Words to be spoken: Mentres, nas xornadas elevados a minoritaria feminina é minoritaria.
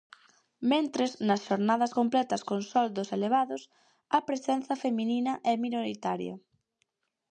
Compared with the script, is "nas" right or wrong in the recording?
right